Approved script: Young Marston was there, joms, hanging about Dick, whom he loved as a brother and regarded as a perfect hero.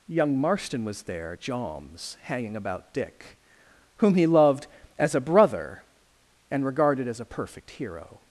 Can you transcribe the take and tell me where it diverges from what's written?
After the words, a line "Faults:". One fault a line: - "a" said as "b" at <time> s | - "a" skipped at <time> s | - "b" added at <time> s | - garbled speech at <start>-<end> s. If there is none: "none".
Young Marston was there, joms, hanging about Dick, whom he loved as a brother and regarded as a perfect hero.
Faults:
none